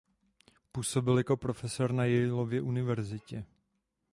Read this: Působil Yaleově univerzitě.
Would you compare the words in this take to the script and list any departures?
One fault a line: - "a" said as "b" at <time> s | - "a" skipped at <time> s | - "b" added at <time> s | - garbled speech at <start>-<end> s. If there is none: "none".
- "jako profesor na" added at 1.2 s